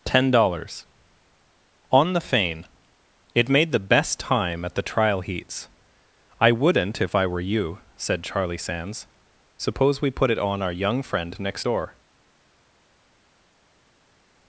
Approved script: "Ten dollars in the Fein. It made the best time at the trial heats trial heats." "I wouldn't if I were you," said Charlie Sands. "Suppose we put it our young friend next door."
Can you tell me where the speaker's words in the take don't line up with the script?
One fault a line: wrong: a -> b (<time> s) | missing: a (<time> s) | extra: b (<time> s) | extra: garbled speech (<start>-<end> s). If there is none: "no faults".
wrong: in -> on (1.9 s)
missing: trial heats (5.7 s)
extra: on (10.4 s)